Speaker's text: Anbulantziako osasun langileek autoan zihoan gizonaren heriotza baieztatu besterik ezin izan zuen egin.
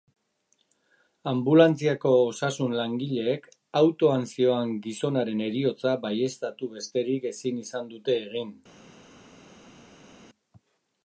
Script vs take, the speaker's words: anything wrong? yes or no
yes